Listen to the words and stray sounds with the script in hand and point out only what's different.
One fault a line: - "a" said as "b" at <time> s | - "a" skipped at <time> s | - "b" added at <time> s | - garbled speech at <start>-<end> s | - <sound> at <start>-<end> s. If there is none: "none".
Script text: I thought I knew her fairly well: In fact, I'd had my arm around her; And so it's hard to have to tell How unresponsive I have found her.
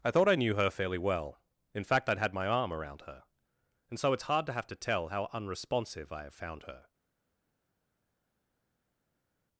none